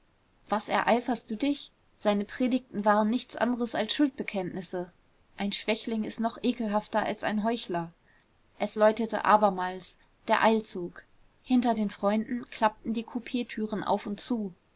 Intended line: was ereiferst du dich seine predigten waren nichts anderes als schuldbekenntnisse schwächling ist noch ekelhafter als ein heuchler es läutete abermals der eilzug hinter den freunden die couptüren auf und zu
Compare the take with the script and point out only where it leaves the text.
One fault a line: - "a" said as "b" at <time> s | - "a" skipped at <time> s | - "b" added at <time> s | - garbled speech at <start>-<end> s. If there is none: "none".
- "ein" added at 5.4 s
- "klappten" added at 12.5 s